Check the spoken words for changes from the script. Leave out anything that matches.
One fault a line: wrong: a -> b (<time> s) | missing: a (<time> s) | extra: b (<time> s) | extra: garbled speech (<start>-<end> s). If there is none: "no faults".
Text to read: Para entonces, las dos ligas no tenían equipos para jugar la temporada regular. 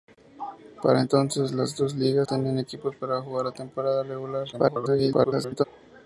missing: no (2.3 s)
extra: garbled speech (4.5-5.6 s)